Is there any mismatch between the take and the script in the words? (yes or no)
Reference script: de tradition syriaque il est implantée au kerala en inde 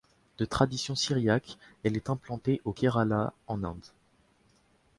yes